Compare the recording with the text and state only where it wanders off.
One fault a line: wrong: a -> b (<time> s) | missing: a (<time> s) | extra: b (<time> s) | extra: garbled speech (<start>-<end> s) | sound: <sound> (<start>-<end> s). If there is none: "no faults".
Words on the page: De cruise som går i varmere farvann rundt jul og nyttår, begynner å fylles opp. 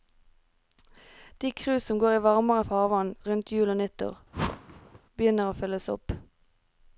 sound: whoosh (4.3-5.0 s)